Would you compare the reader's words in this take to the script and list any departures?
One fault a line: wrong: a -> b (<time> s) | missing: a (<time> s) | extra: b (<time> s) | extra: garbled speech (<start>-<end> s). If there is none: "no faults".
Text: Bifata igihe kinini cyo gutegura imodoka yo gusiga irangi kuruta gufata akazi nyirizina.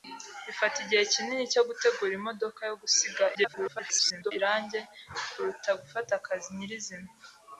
extra: garbled speech (3.3-4.3 s)